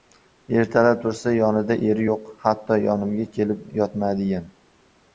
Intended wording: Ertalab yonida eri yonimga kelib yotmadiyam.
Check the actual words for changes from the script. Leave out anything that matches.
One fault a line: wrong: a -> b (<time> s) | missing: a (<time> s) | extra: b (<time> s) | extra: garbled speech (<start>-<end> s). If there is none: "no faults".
extra: tursa (1.0 s)
extra: yo‘q Hatto (2.1 s)